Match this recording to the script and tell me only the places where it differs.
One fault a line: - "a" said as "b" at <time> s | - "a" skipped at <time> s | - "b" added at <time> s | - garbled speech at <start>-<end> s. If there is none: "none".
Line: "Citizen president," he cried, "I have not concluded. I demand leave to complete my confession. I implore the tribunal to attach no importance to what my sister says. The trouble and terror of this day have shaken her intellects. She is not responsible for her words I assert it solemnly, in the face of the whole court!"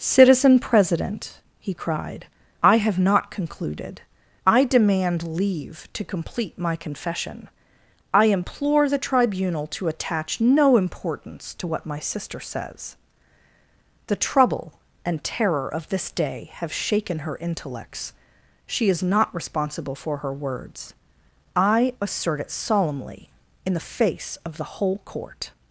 none